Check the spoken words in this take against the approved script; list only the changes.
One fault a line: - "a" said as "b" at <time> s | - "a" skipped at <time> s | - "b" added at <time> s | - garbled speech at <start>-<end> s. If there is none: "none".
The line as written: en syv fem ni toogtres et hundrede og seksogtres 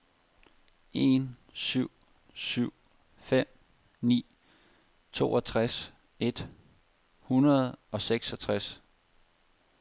- "syv" added at 2.3 s